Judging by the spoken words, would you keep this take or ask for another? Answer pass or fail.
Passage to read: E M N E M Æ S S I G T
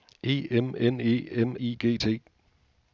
fail